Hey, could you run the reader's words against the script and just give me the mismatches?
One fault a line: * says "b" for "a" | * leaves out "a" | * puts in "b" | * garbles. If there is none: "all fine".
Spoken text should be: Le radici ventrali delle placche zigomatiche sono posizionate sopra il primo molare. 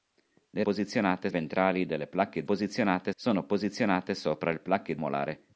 * says "posizionate" for "radici"
* says "posizionate" for "zigomatiche"
* says "placche" for "primo"